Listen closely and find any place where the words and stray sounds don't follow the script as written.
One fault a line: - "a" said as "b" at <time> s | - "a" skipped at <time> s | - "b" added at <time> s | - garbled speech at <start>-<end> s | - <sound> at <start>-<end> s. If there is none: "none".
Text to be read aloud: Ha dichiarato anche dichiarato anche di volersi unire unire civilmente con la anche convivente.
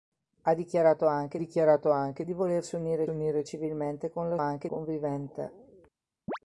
- chirp at 6.3-6.4 s